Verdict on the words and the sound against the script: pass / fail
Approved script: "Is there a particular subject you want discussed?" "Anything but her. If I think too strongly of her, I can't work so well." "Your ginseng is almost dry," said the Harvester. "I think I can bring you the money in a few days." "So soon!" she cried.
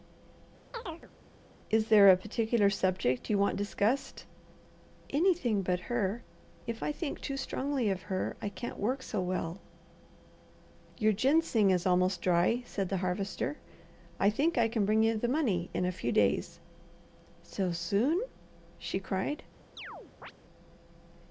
fail